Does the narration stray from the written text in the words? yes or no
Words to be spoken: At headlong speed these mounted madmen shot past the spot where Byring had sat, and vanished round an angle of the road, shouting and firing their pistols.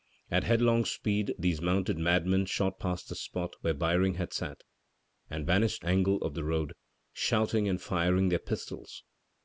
yes